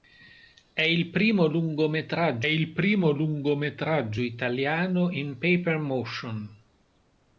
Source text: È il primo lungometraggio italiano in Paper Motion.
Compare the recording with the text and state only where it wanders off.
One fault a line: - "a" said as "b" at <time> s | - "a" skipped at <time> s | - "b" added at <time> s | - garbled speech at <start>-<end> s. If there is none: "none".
- "il primo lungometraggio" added at 2.4 s